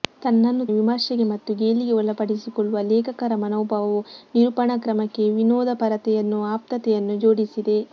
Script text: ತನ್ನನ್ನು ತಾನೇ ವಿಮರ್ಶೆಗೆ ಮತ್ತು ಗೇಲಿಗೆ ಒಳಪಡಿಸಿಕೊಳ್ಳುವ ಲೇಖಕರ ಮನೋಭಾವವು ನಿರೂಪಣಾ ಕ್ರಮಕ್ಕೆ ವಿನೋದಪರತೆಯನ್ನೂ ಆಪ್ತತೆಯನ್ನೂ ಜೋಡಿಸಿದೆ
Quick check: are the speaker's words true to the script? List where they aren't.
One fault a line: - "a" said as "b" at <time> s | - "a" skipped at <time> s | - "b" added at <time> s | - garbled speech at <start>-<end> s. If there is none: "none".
- "ತಾನೇ" skipped at 0.7 s